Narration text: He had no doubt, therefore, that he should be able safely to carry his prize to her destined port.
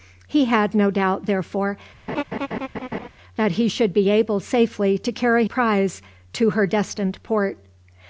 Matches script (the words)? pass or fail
fail